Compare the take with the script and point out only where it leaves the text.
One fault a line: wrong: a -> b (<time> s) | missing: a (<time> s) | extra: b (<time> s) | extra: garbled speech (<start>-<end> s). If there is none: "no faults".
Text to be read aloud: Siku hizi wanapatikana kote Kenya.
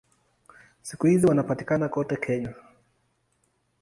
no faults